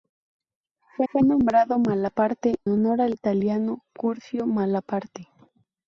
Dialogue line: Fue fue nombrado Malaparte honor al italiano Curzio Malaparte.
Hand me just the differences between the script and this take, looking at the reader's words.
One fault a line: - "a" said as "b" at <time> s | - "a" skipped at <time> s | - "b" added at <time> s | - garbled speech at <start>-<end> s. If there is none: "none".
none